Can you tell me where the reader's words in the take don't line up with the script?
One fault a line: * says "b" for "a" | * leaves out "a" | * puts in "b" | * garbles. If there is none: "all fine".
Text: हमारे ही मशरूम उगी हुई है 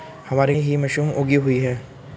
all fine